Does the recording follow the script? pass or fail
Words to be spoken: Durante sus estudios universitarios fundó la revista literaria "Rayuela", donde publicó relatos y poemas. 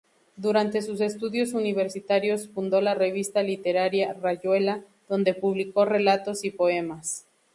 pass